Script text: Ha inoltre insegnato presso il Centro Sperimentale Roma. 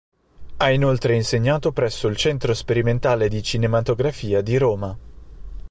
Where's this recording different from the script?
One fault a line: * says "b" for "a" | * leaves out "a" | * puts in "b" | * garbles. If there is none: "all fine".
* puts in "di Cinematografia di"